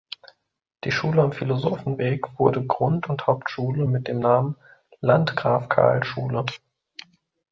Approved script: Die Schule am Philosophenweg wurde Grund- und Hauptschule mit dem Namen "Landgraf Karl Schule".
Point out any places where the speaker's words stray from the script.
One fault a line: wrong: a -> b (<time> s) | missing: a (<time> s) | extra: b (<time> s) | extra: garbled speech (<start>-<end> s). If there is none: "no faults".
no faults